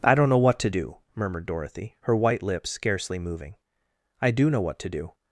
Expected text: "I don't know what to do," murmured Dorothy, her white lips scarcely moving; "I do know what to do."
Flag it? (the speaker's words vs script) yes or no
no